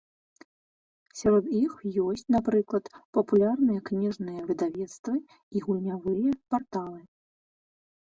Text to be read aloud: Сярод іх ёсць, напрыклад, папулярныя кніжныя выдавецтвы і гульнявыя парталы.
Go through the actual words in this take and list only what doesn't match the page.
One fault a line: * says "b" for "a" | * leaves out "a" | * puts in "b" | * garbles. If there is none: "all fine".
all fine